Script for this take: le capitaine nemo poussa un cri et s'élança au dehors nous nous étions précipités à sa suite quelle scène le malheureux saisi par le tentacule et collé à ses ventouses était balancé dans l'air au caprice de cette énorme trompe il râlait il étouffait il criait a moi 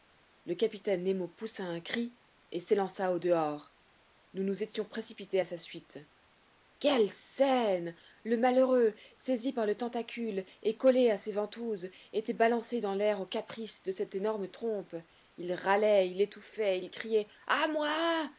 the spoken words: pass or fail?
pass